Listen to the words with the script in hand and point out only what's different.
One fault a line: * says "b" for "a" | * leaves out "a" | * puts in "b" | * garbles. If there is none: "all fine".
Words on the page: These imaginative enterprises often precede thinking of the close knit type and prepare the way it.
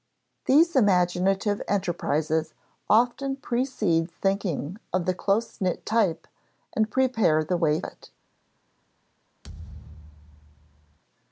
all fine